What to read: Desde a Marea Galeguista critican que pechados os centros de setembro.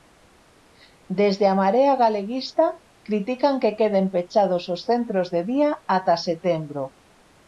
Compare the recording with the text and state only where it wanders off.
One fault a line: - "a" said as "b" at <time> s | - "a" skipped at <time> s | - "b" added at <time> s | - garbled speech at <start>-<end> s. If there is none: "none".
- "queden" added at 3.8 s
- "día ata" added at 5.5 s